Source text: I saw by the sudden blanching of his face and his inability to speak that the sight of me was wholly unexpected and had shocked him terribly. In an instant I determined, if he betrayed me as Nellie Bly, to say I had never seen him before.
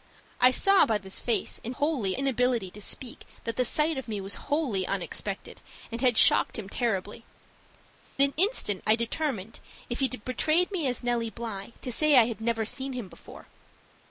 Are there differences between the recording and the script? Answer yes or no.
yes